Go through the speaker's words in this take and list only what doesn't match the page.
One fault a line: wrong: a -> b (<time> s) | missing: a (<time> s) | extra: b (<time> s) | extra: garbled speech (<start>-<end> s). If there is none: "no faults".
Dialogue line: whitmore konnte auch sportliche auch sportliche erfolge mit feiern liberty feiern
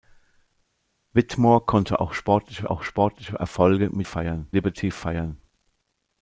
no faults